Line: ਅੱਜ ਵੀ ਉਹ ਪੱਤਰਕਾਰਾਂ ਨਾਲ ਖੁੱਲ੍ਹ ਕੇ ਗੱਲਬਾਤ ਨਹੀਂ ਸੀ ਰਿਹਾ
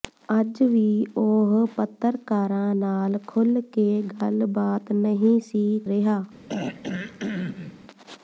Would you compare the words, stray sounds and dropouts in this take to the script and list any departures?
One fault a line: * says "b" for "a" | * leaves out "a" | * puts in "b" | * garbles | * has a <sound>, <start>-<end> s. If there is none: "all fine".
* has a throat clearing, 6.5-7.8 s